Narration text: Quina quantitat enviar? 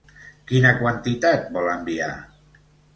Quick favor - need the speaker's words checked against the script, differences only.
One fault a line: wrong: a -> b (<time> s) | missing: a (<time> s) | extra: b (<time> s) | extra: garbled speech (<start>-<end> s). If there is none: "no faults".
extra: vol (1.6 s)